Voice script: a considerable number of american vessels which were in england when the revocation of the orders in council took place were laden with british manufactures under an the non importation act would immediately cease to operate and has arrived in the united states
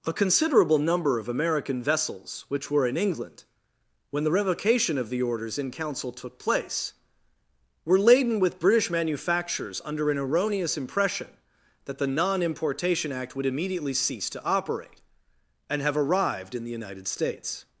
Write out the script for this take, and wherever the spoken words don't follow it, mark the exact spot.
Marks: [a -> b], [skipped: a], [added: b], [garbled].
a considerable number of american vessels which were in england when the revocation of the orders in council took place were laden with british manufactures under an [added: erroneous impression that] the non importation act would immediately cease to operate and [has -> have] arrived in the united states